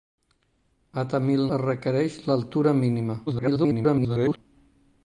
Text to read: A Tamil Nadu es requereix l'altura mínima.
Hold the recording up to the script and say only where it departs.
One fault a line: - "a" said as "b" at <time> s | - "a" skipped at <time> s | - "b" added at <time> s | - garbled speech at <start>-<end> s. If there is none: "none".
- "Nadu" skipped at 1.4 s
- garbled speech at 3.3-4.4 s